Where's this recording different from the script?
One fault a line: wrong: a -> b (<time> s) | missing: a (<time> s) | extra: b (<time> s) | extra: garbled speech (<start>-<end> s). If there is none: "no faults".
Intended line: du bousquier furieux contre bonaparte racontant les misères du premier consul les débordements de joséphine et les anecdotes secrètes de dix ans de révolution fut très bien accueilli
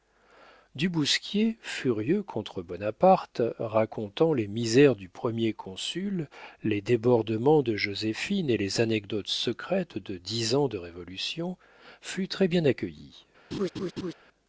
no faults